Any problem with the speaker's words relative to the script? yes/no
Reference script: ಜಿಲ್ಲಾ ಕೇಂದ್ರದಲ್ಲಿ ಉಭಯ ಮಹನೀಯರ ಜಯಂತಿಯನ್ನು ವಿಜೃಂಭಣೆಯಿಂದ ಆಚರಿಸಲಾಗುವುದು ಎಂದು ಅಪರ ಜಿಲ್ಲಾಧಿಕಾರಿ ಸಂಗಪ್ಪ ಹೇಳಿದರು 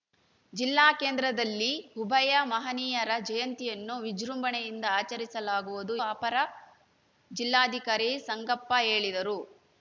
yes